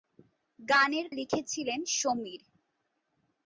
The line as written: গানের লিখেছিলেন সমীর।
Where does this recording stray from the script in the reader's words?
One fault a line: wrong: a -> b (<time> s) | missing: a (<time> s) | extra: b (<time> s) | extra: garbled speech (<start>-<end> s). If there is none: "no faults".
no faults